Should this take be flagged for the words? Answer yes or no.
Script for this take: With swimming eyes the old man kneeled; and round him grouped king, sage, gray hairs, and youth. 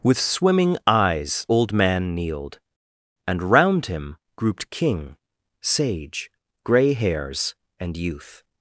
yes